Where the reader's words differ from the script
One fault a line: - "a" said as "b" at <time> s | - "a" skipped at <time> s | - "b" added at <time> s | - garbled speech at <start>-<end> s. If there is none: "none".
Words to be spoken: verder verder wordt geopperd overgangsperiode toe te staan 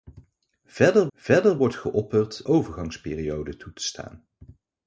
none